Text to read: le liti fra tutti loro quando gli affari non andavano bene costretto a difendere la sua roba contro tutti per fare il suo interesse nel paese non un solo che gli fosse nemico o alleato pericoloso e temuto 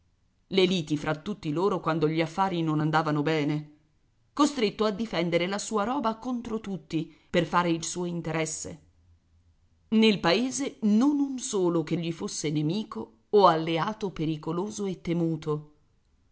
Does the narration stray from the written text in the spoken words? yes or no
no